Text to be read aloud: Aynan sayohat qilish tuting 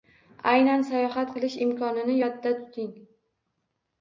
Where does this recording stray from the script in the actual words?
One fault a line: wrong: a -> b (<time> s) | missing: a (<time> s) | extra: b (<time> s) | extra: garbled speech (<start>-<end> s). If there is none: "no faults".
extra: imkonini yodda (1.7 s)